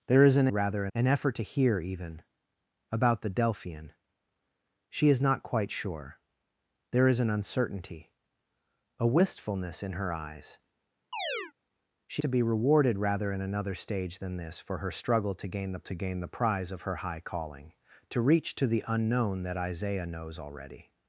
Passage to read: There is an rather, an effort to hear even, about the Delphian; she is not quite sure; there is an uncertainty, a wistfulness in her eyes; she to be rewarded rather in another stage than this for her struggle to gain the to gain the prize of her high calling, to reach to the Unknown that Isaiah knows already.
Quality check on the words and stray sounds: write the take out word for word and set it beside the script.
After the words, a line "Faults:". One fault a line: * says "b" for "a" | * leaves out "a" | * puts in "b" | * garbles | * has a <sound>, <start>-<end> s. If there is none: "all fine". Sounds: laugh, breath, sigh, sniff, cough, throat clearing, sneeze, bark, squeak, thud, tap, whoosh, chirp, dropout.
There is an rather, an effort to hear even, about the Delphian; she is not quite sure; there is an uncertainty, a wistfulness in her eyes; she to be rewarded rather in another stage than this for her struggle to gain the to gain the prize of her high calling, to reach to the Unknown that Isaiah knows already.
Faults:
* has a chirp, 11.1-11.5 s